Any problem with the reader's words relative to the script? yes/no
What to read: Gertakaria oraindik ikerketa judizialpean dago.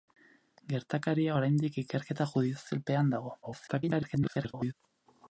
yes